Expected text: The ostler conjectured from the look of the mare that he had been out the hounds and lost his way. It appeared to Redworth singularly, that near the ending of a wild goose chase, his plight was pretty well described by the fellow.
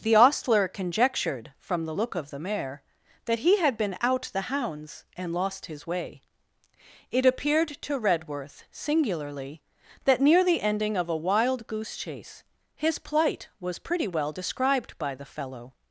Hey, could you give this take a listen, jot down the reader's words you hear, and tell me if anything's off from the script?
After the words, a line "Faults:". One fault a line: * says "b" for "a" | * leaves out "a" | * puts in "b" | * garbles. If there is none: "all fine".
The ostler conjectured from the look of the mare that he had been out the hounds and lost his way. It appeared to Redworth singularly, that near the ending of a wild goose chase, his plight was pretty well described by the fellow.
Faults:
all fine